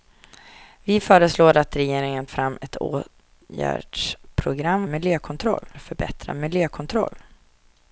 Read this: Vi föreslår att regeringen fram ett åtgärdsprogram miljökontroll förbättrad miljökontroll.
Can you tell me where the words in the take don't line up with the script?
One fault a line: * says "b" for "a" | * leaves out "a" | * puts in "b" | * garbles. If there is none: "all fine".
all fine